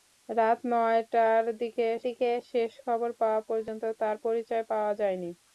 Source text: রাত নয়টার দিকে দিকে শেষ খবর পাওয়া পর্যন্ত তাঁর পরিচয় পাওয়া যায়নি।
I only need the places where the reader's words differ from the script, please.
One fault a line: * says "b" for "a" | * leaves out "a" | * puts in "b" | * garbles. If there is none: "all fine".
all fine